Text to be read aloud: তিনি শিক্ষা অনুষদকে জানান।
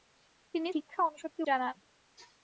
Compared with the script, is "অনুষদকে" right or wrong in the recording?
right